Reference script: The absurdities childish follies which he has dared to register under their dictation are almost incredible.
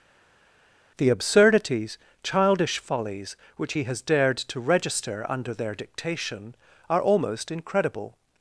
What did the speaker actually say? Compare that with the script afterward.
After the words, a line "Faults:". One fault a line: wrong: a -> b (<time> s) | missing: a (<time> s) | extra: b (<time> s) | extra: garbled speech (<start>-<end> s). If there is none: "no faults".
The absurdities childish follies which he has dared to register under their dictation are almost incredible.
Faults:
no faults